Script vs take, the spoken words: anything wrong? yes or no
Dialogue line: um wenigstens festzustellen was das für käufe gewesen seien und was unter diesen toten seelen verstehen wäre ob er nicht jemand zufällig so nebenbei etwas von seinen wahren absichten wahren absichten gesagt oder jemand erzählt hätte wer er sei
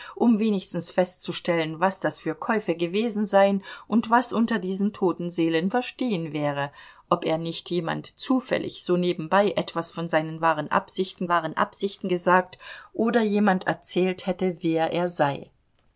no